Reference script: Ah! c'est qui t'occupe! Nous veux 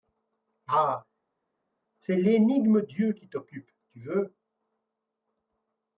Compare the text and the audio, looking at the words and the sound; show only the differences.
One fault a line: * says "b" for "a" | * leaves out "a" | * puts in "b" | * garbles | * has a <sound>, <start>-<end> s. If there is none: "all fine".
* puts in "l'énigme Dieu"
* says "Tu" for "Nous"